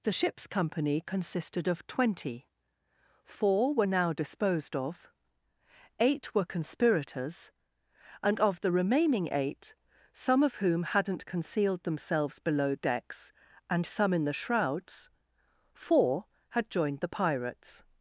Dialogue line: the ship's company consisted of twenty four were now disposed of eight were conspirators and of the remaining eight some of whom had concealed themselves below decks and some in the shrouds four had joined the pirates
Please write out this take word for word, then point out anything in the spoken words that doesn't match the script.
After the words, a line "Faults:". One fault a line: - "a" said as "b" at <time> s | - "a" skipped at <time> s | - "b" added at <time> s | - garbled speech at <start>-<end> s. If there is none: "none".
the ship's company consisted of twenty four were now disposed of eight were conspirators and of the remaining eight some of whom hadn't concealed themselves below decks and some in the shrouds four had joined the pirates
Faults:
- "had" said as "hadn't" at 10.8 s